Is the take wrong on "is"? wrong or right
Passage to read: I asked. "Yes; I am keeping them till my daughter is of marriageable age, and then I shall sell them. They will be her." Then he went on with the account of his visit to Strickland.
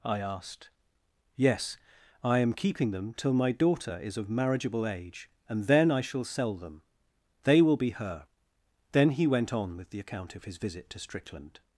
right